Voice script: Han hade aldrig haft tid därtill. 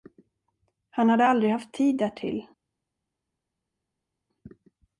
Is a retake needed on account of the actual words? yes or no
no